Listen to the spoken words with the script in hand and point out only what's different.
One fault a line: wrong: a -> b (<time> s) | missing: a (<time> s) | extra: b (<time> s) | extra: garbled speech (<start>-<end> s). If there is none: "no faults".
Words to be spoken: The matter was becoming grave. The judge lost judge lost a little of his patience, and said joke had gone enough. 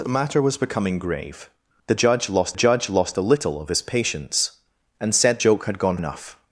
no faults